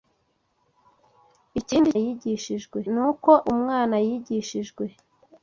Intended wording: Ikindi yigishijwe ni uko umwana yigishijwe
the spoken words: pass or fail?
pass